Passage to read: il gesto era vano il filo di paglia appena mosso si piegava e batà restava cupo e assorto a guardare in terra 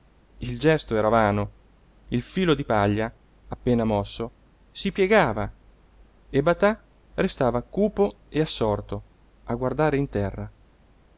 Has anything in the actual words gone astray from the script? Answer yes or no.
no